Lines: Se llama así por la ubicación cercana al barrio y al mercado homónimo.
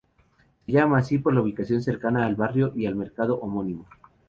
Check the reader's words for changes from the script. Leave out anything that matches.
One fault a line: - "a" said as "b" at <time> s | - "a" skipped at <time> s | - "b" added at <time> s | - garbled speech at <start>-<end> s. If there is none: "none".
none